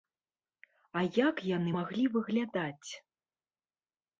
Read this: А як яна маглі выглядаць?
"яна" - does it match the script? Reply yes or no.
no